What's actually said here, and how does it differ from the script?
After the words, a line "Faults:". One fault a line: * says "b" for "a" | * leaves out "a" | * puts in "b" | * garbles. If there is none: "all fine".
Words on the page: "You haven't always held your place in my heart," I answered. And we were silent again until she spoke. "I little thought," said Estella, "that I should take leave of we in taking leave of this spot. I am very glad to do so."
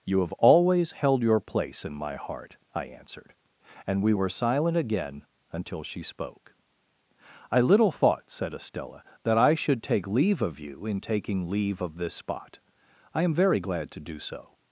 "You have always held your place in my heart," I answered. And we were silent again until she spoke. "I little thought," said Estella, "that I should take leave of you in taking leave of this spot. I am very glad to do so."
Faults:
* says "have" for "haven't"
* says "you" for "we"